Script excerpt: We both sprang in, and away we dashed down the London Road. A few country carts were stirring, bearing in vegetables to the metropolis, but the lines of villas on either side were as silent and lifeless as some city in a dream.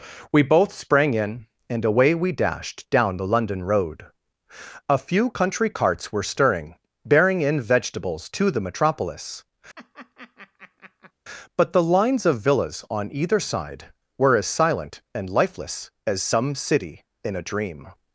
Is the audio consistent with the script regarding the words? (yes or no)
yes